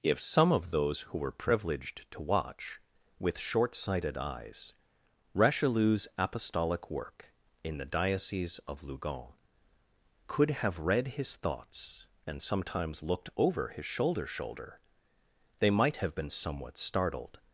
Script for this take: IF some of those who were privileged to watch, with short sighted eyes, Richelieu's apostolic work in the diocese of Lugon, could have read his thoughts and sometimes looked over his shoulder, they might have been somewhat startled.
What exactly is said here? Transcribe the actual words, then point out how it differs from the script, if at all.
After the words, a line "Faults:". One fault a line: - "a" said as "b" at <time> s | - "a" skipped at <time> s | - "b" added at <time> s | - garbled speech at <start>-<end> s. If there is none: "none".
IF some of those who were privileged to watch, with short sighted eyes, Richelieu's apostolic work in the diocese of Lugon, could have read his thoughts and sometimes looked over his shoulder shoulder, they might have been somewhat startled.
Faults:
- "shoulder" added at 14.3 s